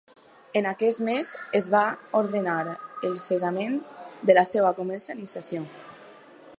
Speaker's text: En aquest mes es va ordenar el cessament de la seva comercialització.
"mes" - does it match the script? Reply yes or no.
yes